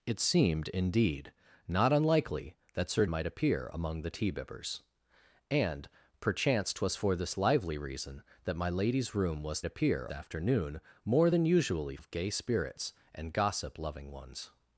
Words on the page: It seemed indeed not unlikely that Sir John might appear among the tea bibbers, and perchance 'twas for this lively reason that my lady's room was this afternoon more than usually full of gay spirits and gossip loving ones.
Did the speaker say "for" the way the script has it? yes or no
yes